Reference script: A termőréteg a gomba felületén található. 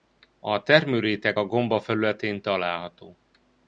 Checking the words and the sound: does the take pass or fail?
pass